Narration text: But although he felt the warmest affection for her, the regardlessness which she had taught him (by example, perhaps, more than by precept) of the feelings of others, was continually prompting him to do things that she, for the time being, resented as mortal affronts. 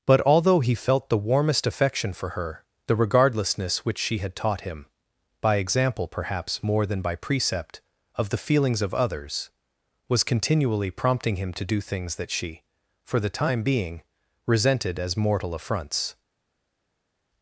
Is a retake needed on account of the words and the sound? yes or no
no